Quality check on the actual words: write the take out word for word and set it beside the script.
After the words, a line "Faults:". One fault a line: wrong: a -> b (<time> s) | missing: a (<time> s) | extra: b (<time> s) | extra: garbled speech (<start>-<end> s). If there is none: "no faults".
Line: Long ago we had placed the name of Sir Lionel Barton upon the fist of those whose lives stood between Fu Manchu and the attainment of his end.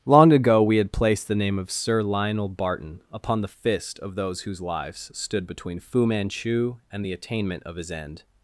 Long ago we had placed the name of Sir Lionel Barton upon the fist of those whose lives stood between Fu Manchu and the attainment of his end.
Faults:
no faults